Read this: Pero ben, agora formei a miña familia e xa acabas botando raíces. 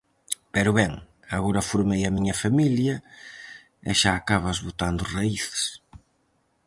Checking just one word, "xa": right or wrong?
right